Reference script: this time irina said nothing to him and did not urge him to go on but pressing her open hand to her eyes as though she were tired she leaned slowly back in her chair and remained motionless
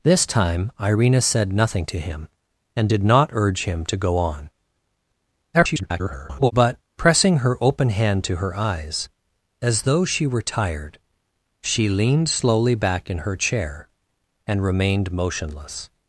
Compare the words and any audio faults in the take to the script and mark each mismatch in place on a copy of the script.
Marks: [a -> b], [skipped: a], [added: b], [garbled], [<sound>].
this time irina said nothing to him and did not urge him to go on [garbled] but pressing her open hand to her eyes as though she were tired she leaned slowly back in her chair and remained motionless